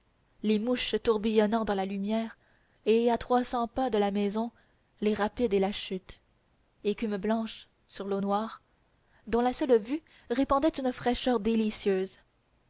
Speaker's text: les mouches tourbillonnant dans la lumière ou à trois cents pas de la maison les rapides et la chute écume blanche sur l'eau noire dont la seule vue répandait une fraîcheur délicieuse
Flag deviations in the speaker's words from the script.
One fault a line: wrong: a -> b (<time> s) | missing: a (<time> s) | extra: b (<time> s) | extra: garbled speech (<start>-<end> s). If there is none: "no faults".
wrong: ou -> et (2.9 s)